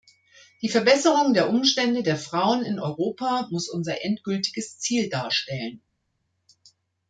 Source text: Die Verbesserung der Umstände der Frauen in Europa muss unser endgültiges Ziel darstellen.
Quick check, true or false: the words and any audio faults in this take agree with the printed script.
true